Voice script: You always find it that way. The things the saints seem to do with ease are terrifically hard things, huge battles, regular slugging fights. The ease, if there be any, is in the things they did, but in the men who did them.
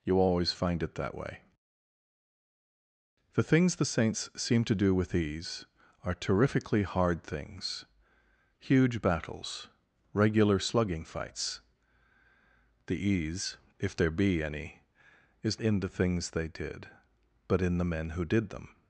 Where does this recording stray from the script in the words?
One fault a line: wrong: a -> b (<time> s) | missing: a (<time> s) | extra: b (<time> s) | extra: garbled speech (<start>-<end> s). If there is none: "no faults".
no faults